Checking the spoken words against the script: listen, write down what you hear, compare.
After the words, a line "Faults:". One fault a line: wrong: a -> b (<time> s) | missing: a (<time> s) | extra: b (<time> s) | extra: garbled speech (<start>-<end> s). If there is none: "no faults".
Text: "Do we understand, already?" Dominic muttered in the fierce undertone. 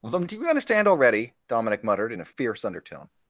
"Do you understand, already?" Dominic muttered in a fierce undertone.
Faults:
wrong: we -> you (0.3 s)
wrong: the -> a (2.2 s)